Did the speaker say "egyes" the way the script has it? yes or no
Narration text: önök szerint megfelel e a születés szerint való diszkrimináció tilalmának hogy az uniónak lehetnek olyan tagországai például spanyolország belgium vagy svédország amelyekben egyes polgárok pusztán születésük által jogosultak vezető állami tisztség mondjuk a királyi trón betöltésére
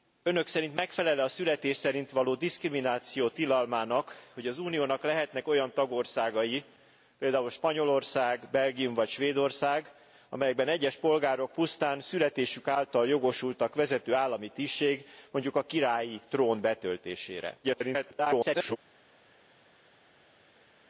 yes